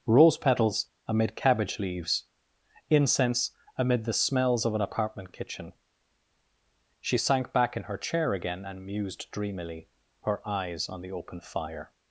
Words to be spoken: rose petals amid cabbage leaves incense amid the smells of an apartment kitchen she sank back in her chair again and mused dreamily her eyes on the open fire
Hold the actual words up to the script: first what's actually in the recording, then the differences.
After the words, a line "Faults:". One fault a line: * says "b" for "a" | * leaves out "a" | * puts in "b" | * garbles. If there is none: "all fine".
rose petals amid cabbage leaves incense amid the smells of an apartment kitchen she sank back in her chair again and mused dreamily her eyes on the open fire
Faults:
all fine